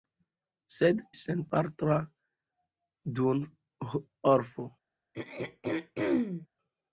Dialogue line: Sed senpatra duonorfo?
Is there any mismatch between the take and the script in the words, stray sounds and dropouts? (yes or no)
yes